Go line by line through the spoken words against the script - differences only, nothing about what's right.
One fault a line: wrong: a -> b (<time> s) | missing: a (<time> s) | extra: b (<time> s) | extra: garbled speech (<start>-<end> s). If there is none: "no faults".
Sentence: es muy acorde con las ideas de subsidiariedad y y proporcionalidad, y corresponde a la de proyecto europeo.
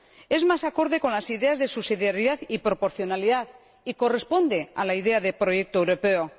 wrong: muy -> más (0.5 s)
missing: y (2.6 s)
extra: idea (4.9 s)